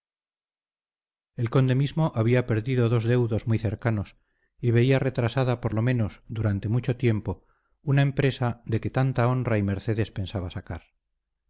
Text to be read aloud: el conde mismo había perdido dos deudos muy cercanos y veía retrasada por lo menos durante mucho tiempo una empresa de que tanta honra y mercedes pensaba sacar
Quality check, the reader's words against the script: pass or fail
pass